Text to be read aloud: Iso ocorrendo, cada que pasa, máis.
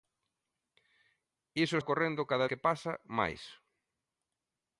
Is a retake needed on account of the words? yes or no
no